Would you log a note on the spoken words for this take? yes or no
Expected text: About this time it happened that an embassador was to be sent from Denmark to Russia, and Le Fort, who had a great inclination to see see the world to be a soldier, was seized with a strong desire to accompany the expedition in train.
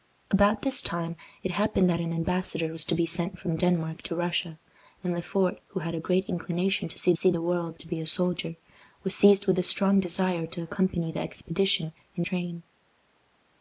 no